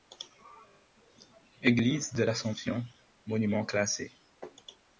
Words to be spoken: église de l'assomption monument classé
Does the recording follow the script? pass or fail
pass